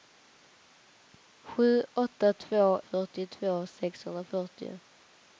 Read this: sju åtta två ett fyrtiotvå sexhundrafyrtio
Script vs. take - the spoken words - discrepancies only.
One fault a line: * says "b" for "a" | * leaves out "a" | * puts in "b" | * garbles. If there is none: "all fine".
* leaves out "ett"